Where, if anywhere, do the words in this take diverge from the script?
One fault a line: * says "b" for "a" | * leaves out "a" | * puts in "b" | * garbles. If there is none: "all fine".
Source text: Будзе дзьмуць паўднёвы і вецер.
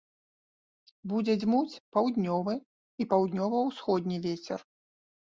* puts in "паўднёва ўсходні"